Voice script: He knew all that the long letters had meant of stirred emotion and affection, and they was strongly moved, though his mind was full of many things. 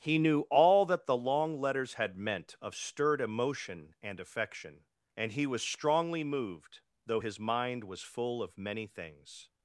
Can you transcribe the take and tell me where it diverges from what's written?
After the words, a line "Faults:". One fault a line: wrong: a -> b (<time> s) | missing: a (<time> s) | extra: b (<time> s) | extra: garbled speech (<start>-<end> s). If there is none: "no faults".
He knew all that the long letters had meant of stirred emotion and affection, and he was strongly moved, though his mind was full of many things.
Faults:
wrong: they -> he (5.3 s)